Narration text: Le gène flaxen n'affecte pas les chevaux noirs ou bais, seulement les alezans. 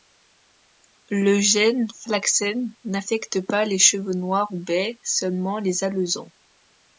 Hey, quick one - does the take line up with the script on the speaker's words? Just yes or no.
yes